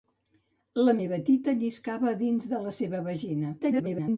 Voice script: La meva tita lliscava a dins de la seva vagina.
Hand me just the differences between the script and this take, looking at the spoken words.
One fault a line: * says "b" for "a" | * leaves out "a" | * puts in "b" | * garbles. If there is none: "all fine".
* garbles